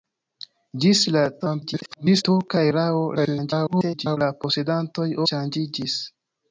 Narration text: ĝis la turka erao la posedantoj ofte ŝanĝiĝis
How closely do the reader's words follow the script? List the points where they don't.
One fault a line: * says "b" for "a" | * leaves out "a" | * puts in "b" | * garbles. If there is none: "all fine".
* garbles
* garbles
* leaves out "ofte"